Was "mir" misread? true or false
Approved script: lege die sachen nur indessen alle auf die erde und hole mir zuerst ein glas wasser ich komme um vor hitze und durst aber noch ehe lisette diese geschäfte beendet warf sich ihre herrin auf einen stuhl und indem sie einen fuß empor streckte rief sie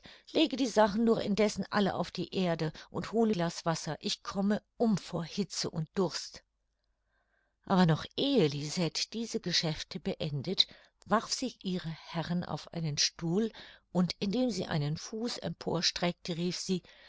true